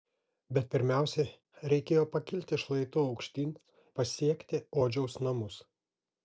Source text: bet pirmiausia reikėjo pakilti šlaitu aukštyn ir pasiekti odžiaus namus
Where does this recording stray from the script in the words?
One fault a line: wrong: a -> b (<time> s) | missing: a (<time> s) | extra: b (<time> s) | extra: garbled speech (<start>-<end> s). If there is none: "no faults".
missing: ir (3.5 s)